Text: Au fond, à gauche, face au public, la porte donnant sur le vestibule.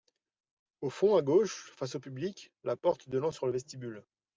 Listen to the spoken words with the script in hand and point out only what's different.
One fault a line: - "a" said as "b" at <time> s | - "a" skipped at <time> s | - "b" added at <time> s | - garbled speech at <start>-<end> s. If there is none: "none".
none